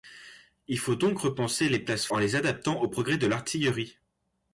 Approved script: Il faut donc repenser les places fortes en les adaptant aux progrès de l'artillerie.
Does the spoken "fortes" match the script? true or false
false